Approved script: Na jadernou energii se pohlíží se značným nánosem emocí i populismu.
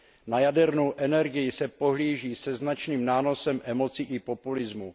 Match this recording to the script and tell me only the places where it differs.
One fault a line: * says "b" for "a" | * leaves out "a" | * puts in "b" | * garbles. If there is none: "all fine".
all fine